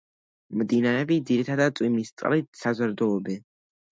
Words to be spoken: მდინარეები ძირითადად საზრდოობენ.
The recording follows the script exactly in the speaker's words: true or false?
false